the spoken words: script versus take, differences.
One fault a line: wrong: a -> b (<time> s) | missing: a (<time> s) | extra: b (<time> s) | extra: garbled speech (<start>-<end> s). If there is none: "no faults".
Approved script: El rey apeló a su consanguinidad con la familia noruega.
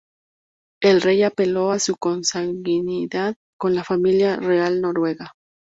extra: real (4.4 s)